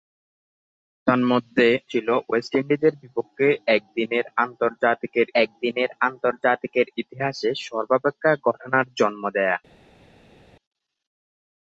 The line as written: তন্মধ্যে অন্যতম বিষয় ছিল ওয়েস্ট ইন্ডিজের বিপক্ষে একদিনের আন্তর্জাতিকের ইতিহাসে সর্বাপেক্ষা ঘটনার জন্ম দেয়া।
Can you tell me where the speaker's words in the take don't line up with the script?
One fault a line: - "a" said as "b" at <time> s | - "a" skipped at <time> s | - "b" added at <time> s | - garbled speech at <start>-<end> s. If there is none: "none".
- "অন্যতম বিষয়" skipped at 1.7 s
- "একদিনের আন্তর্জাতিকের" added at 5.4 s